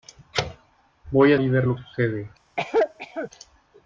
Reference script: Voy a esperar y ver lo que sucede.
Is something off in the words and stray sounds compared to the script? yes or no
yes